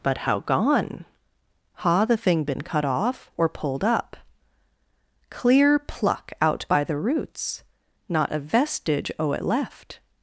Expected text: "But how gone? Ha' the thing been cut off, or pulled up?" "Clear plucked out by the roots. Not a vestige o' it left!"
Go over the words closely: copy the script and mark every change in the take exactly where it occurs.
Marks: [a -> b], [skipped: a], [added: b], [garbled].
"But how gone? Ha' the thing been cut off, or pulled up?" "Clear [plucked -> pluck] out by the roots. Not a vestige o' it left!"